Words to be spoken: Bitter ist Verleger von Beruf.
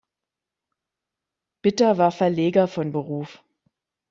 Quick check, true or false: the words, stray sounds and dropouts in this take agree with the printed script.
false